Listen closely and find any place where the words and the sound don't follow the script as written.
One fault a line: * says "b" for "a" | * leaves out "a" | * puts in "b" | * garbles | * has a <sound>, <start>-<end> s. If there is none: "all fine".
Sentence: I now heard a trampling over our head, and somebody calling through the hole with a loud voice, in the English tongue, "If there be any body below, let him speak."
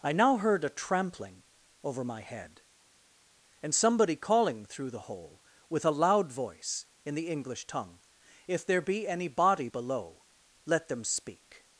* says "my" for "our"
* says "them" for "him"